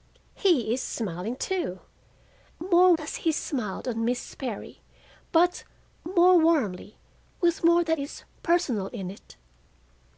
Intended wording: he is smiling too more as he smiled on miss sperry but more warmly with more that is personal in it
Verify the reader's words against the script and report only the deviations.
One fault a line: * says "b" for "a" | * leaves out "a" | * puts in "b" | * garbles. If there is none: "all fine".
all fine